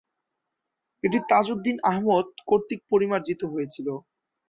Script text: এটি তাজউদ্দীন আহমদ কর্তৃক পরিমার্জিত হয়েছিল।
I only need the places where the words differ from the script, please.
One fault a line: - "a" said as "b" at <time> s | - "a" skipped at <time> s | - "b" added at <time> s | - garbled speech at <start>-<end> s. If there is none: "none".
none